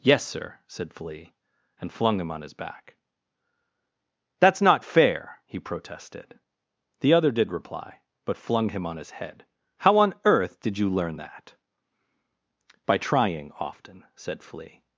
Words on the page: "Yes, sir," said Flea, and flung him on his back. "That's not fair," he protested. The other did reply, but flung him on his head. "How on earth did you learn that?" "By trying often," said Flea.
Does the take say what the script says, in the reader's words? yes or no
yes